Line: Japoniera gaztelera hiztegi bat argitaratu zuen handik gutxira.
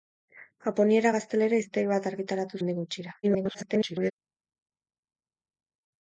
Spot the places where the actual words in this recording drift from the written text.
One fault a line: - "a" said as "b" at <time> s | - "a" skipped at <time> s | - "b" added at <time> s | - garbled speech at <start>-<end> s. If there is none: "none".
- "zuen" skipped at 2.6 s
- garbled speech at 3.2-4.1 s